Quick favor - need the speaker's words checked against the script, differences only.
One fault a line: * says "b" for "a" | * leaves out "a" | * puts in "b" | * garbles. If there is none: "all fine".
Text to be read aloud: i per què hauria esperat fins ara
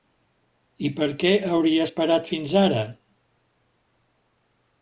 all fine